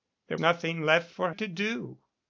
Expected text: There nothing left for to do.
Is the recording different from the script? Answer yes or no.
no